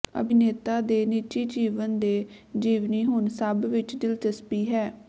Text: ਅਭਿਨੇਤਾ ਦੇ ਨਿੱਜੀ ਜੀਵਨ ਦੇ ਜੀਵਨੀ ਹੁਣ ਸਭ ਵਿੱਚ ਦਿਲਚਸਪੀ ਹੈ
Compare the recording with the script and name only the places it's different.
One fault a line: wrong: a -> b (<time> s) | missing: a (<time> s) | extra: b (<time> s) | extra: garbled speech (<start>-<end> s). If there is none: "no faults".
no faults